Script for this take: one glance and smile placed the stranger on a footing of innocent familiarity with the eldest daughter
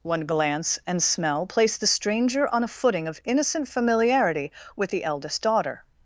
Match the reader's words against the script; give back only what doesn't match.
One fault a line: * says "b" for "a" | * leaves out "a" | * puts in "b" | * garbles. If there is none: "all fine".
* says "smell" for "smile"